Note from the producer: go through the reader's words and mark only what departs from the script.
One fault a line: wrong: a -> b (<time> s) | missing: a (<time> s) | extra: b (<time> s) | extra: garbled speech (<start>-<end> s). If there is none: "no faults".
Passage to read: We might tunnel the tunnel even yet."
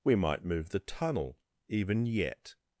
wrong: tunnel -> move (0.4 s)